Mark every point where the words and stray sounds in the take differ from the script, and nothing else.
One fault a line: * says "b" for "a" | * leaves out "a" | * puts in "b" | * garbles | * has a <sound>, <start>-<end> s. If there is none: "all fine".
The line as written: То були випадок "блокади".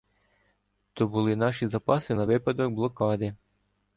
* puts in "наші запаси на"